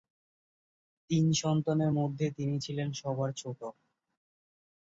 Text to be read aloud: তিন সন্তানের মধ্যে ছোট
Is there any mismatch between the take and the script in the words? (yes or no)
yes